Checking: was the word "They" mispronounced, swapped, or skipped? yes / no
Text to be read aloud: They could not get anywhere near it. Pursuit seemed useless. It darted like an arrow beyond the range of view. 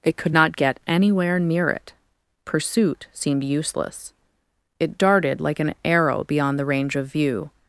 yes